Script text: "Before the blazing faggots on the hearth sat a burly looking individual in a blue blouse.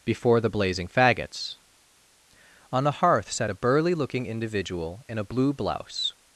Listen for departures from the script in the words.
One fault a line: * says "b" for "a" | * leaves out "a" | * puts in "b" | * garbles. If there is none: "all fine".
all fine